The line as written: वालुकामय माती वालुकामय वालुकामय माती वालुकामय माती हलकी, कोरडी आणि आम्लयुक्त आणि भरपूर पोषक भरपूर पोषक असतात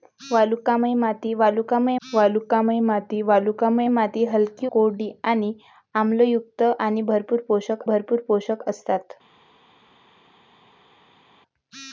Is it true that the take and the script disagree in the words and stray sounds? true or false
false